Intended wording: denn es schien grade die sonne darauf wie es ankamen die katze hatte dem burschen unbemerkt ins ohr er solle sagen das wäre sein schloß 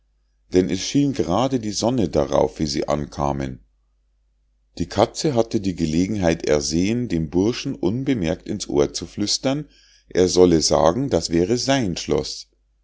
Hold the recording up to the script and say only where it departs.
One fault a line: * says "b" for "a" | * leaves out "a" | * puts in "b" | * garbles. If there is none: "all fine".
* says "sie" for "es"
* puts in "die gelegenheit ersehen"
* puts in "zu flüstern"